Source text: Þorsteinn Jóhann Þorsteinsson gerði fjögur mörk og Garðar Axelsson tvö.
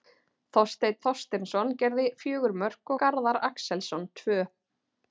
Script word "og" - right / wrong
wrong